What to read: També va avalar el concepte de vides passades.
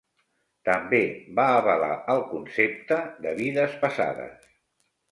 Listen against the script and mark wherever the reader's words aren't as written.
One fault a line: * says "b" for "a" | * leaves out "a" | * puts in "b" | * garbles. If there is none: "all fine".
all fine